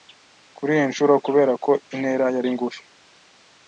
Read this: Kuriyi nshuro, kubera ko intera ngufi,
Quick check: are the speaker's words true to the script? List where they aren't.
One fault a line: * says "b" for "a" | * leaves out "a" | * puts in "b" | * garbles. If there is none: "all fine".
* puts in "yari"